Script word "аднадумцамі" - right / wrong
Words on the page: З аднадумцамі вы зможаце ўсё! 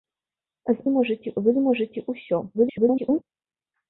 wrong